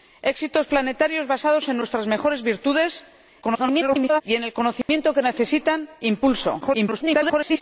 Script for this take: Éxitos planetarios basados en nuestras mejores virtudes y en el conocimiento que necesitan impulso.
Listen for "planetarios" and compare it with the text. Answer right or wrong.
right